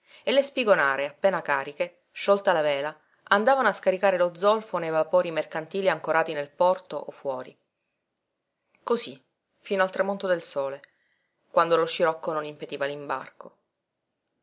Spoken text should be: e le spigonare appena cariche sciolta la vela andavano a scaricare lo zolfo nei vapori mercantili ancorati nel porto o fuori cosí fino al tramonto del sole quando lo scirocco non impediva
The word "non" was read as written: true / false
true